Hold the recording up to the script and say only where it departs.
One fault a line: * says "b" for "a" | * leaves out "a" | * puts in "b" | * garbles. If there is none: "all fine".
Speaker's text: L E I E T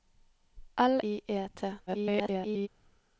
* leaves out "E"
* garbles